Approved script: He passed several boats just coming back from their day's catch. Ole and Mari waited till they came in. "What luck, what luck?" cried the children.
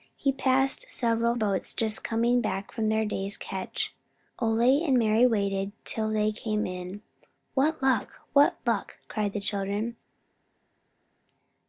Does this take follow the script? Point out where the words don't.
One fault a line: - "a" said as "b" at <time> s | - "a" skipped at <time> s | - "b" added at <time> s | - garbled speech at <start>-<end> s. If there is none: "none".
none